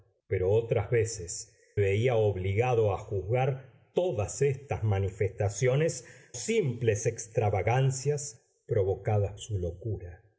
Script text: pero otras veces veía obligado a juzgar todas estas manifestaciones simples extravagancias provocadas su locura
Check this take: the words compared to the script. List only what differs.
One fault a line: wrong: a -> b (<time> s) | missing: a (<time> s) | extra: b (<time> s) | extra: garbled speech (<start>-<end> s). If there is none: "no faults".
no faults